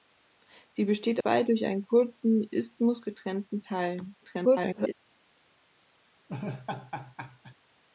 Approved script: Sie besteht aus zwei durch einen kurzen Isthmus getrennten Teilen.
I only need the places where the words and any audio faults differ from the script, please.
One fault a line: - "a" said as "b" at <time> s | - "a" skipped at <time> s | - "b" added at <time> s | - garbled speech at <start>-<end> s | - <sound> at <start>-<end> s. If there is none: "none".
- "aus" skipped at 1.2 s
- garbled speech at 4.2-4.9 s
- laugh at 6.3-7.5 s